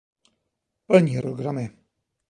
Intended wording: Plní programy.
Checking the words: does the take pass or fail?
pass